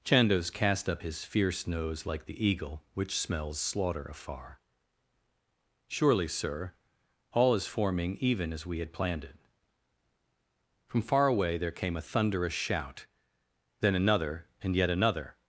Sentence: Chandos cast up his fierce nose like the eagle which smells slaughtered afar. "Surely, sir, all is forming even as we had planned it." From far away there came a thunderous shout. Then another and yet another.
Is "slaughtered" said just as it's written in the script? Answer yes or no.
no